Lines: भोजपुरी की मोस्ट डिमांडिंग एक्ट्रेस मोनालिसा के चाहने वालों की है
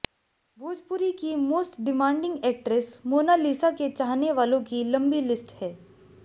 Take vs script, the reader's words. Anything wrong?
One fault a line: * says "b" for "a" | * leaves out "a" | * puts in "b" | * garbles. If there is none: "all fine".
* puts in "लंबी लिस्ट"